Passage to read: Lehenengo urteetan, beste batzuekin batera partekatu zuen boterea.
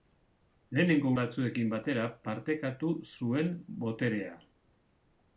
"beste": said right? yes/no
no